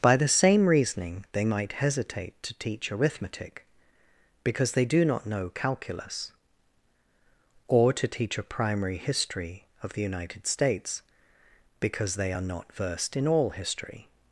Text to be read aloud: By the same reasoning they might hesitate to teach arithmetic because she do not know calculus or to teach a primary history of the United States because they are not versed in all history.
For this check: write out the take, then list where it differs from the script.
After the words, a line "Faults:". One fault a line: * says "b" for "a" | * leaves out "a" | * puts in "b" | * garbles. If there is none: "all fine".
By the same reasoning they might hesitate to teach arithmetic because they do not know calculus or to teach a primary history of the United States because they are not versed in all history.
Faults:
* says "they" for "she"